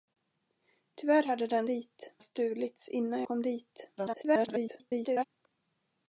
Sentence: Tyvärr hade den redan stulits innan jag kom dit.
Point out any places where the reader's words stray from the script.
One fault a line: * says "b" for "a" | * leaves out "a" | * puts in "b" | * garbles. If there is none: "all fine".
* says "dit" for "redan"
* leaves out "jag"
* garbles